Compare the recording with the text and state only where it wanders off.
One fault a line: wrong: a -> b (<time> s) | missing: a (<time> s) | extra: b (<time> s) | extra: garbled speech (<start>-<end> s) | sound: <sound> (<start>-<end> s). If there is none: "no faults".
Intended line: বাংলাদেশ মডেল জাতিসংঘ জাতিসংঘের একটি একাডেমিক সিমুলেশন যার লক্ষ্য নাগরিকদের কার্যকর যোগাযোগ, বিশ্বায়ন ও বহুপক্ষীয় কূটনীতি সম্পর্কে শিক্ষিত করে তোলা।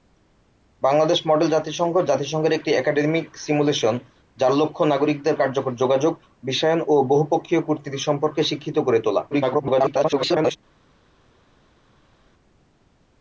extra: garbled speech (9.3-10.6 s)